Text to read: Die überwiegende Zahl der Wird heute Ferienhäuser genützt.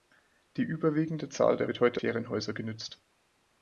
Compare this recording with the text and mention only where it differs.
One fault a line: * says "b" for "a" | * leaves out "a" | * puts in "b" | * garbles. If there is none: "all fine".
all fine